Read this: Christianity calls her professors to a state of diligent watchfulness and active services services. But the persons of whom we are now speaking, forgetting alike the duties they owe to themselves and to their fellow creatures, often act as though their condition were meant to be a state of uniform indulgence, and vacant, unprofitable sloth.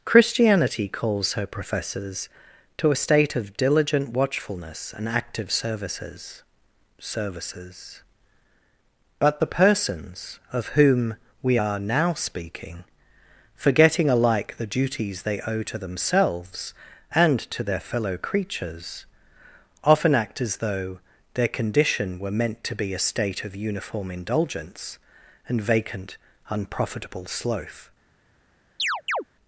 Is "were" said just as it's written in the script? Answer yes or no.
yes